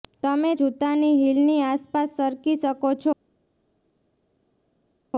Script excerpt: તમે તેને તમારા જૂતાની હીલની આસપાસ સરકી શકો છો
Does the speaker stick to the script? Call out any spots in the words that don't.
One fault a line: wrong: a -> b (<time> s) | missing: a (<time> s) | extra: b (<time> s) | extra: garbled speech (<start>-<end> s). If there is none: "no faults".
missing: તેને તમારા (0.5 s)